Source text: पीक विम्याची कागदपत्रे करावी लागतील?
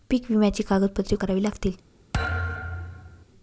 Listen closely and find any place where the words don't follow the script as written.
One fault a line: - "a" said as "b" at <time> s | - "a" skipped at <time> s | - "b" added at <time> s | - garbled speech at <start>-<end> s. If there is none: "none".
none